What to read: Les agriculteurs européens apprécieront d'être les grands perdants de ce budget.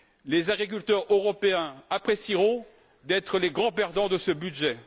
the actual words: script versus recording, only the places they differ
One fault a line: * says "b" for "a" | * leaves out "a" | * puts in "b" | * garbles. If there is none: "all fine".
all fine